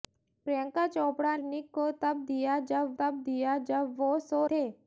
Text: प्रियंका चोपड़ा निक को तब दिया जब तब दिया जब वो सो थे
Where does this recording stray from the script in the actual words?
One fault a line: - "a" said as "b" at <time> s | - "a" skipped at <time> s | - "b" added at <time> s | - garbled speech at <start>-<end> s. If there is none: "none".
none